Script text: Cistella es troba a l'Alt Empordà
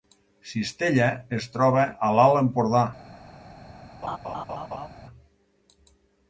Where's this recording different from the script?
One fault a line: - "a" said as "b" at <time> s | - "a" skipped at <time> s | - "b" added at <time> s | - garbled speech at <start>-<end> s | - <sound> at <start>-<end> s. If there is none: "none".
- laugh at 4.0-4.9 s